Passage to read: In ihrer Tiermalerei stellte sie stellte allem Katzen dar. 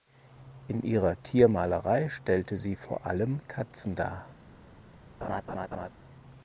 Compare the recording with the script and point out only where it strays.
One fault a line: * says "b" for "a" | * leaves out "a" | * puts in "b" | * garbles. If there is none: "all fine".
* says "vor" for "stellte"